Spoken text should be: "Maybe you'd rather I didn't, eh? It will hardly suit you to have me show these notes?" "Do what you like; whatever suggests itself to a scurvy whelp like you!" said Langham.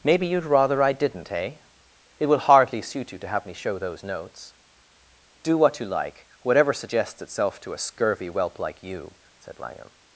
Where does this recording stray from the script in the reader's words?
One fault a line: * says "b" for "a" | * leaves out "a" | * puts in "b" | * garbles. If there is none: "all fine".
* says "those" for "these"